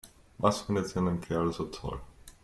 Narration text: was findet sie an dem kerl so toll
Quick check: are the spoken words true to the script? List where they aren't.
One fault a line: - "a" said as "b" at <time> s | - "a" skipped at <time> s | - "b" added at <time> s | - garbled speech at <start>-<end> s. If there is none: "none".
none